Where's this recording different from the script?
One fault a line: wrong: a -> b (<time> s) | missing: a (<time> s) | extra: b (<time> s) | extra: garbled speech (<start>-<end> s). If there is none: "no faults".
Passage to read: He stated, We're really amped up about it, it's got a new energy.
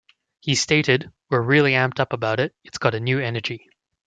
no faults